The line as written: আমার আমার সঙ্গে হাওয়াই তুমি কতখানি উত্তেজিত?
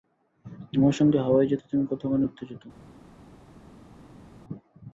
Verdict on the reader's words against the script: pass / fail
fail